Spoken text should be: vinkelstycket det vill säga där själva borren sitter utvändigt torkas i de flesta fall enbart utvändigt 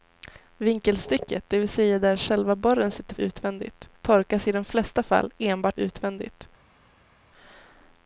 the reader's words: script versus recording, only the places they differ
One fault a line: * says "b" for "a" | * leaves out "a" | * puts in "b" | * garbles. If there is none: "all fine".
all fine